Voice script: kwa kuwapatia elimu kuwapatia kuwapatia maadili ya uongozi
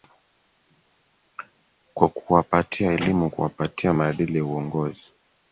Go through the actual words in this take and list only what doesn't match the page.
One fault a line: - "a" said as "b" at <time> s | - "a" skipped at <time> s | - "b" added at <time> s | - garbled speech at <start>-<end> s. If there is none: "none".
- "kuwapatia" skipped at 3.9 s